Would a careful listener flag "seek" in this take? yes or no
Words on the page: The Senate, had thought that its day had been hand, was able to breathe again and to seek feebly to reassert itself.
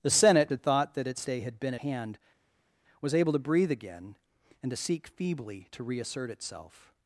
no